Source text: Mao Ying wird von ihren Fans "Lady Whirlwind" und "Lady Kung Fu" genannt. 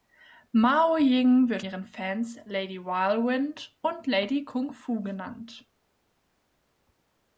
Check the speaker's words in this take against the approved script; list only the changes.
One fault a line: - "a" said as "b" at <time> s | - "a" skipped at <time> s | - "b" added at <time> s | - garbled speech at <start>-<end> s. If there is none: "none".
- "von" skipped at 1.6 s